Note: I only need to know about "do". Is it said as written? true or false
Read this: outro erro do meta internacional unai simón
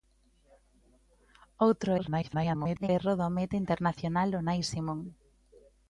true